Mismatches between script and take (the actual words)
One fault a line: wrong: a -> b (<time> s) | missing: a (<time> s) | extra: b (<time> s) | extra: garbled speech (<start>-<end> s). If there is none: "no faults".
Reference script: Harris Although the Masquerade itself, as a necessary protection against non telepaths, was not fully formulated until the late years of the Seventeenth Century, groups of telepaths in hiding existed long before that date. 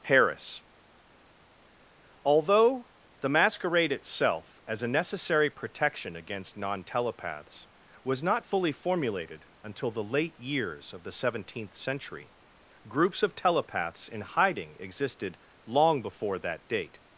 no faults